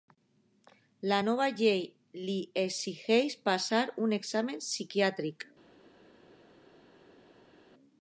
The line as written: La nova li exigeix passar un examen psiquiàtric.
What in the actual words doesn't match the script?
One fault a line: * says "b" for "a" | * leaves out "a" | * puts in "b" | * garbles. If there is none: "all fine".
* puts in "llei"